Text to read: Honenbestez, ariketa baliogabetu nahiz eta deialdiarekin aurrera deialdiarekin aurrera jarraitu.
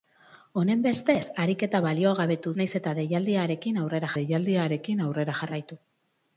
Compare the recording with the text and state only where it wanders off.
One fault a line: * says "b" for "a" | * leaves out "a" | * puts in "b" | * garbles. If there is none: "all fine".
all fine